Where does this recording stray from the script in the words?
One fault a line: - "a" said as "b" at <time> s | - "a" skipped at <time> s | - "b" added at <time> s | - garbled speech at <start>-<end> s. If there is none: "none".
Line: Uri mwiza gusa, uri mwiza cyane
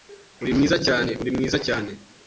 - "gusa" said as "cyane" at 0.8 s